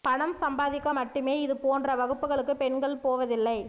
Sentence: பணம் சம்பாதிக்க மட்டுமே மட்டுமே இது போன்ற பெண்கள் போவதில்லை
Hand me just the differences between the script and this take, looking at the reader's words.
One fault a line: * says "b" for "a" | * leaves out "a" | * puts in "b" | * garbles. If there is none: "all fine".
* leaves out "மட்டுமே"
* puts in "வகுப்புகளுக்கு"